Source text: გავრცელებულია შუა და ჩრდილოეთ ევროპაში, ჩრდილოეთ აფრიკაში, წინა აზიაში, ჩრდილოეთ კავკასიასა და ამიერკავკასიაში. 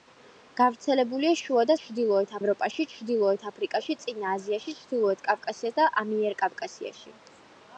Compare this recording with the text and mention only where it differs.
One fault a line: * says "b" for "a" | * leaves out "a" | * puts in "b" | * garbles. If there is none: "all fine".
all fine